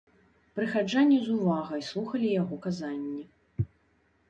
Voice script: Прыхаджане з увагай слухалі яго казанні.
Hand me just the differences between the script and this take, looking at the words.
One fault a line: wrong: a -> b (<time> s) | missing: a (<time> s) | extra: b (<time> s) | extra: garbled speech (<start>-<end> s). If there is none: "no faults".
no faults